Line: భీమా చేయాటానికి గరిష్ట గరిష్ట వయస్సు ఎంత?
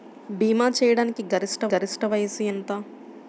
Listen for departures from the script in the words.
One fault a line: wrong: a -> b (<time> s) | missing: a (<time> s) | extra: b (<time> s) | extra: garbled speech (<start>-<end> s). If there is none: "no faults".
no faults